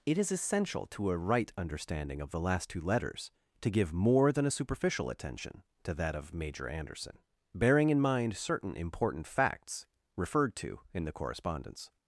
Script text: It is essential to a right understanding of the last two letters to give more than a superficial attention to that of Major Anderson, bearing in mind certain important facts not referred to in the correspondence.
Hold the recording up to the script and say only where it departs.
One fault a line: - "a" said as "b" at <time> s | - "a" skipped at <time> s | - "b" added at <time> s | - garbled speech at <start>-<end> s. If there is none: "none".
- "not" skipped at 9.9 s